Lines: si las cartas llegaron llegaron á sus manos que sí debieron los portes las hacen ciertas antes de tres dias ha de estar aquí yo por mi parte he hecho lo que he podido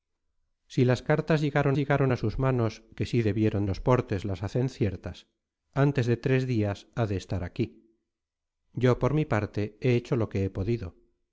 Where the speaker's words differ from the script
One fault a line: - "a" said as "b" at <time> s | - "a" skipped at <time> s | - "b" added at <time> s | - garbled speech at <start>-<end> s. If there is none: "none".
none